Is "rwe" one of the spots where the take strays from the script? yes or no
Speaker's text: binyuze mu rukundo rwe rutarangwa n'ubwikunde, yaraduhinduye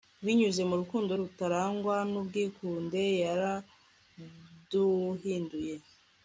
yes